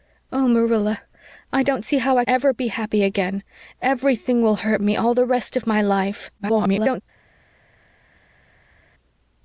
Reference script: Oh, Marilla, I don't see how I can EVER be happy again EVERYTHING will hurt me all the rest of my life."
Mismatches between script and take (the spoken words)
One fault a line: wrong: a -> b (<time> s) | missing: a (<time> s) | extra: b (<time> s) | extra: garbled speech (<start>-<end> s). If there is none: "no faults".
missing: can (2.2 s)
extra: garbled speech (6.4-7.0 s)